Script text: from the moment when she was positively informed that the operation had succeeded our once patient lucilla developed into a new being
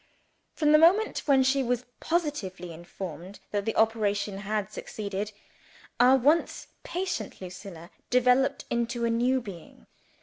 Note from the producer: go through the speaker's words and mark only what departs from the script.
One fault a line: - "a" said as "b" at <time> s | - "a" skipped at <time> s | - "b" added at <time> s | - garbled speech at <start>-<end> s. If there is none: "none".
none